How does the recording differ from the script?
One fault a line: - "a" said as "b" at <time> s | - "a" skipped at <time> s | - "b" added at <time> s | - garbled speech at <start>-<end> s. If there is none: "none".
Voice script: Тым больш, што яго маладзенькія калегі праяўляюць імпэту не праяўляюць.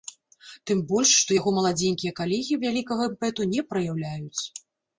- "праяўляюць" said as "вялікага" at 2.7 s